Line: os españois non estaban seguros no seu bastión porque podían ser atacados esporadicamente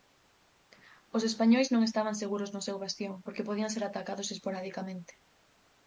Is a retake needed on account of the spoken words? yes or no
no